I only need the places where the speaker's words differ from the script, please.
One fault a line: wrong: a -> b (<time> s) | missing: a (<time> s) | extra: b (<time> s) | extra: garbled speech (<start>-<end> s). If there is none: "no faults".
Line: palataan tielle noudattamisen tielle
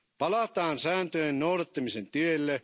wrong: tielle -> sääntöjen (0.8 s)